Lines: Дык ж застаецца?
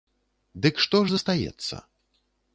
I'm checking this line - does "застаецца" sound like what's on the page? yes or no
yes